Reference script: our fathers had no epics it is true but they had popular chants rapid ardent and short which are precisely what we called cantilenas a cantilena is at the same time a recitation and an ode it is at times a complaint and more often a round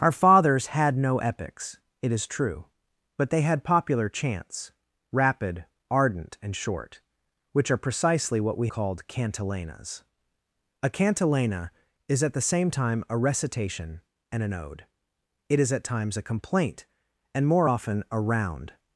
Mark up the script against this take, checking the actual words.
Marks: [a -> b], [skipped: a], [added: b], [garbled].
our fathers had no epics it is true but they had popular chants rapid ardent and short which are precisely what we called cantilenas a cantilena is at the same time a recitation and an ode it is at times a complaint and more often a round